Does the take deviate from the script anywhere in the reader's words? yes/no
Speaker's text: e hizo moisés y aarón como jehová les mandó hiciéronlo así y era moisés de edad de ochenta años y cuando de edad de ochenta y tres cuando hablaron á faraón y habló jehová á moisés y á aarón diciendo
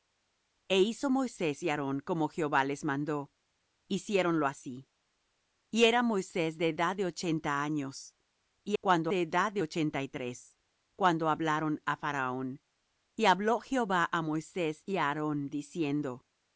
no